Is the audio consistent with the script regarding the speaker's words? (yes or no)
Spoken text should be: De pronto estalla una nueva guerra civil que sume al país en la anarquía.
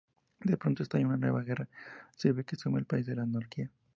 yes